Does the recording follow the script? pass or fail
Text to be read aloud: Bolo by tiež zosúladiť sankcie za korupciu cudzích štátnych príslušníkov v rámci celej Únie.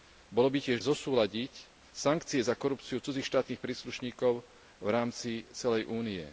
pass